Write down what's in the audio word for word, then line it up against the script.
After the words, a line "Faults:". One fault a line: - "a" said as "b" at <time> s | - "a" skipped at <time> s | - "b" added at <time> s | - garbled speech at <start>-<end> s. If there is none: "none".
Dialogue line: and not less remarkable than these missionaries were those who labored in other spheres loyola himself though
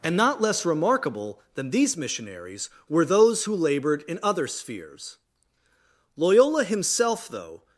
and not less remarkable than these missionaries were those who labored in other spheres loyola himself though
Faults:
none